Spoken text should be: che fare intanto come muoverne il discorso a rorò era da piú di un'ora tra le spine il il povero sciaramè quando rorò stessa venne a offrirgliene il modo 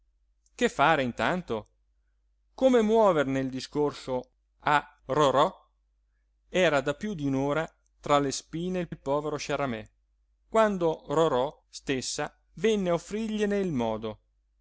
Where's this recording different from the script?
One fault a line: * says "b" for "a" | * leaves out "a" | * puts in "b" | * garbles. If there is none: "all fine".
all fine